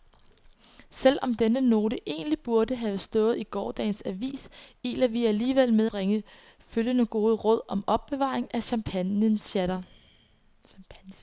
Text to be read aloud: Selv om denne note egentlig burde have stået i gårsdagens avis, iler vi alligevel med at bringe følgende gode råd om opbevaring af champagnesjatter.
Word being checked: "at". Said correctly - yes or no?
no